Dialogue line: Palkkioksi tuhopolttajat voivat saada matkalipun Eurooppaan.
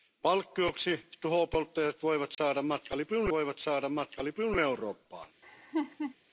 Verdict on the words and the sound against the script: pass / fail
fail